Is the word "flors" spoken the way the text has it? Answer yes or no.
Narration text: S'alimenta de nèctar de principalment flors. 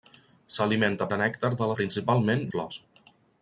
yes